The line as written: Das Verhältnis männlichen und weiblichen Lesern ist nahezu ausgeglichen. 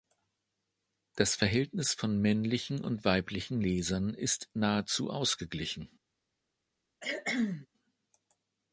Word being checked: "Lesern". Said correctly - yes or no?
yes